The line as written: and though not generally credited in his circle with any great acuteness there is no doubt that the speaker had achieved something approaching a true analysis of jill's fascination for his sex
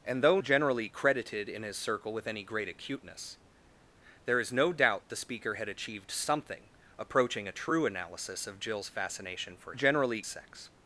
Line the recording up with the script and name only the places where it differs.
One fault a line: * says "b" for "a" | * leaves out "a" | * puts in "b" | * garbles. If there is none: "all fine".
* leaves out "not"
* leaves out "that"
* says "generally" for "his"